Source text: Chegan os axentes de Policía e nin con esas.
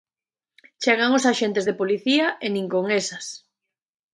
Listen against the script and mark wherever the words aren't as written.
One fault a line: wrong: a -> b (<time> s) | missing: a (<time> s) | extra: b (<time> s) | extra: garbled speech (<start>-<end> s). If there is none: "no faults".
no faults